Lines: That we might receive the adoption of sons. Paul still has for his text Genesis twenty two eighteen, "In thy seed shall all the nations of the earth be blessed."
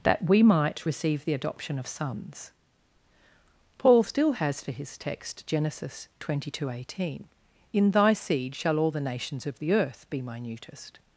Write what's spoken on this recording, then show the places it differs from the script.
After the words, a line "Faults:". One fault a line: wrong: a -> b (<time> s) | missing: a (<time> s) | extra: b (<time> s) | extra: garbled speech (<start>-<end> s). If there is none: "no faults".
That we might receive the adoption of sons. Paul still has for his text Genesis twenty two eighteen, "In thy seed shall all the nations of the earth be minutest."
Faults:
wrong: blessed -> minutest (10.2 s)